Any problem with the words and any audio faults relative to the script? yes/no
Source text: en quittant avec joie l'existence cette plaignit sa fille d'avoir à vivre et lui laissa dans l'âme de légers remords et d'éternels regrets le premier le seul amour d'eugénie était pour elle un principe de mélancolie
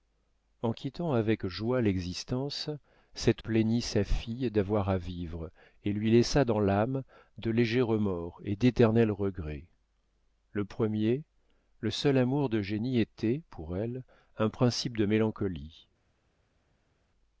no